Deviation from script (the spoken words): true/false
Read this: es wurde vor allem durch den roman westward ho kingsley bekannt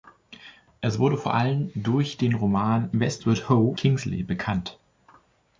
false